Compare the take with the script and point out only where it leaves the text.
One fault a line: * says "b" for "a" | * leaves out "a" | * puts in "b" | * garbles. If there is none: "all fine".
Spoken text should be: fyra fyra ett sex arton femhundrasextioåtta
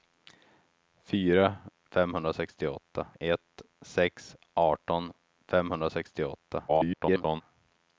* says "femhundrasextioåtta" for "fyra"
* garbles